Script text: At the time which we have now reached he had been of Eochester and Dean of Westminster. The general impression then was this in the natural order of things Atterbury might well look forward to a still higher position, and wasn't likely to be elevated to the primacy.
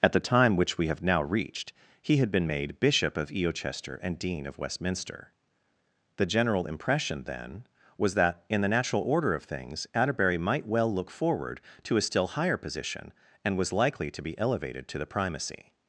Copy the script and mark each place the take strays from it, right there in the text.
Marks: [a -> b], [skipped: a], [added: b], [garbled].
At the time which we have now reached he had been [added: made Bishop] of Eochester and Dean of Westminster. The general impression then was [this -> that] in the natural order of things Atterbury might well look forward to a still higher position, and [wasn't -> was] likely to be elevated to the primacy.